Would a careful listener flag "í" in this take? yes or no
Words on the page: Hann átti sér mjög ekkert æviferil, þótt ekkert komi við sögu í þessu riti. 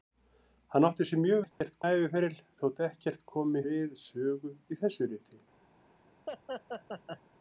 no